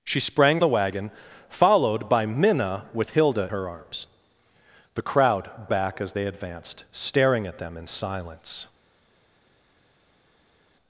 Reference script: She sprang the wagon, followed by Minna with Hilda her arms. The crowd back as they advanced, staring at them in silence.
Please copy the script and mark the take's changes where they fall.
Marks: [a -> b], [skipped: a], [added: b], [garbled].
She sprang the wagon, followed by Minna with Hilda her arms. The crowd back as they advanced, staring at them in silence.